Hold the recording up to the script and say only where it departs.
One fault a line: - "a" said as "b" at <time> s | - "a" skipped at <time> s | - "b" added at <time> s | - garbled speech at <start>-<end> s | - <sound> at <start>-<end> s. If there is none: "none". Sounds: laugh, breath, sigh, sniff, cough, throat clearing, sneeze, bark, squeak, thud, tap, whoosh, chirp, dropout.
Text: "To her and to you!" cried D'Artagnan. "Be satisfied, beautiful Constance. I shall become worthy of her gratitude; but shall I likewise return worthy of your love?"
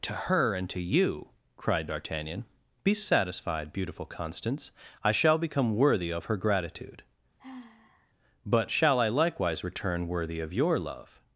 - sigh at 7.4-8.1 s